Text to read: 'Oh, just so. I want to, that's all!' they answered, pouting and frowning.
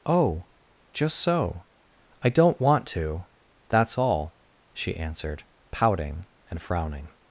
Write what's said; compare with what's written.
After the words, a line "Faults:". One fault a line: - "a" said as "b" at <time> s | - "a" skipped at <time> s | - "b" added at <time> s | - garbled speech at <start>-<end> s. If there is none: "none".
'Oh, just so. I don't want to, that's all!' she answered, pouting and frowning.
Faults:
- "don't" added at 2.3 s
- "they" said as "she" at 4.7 s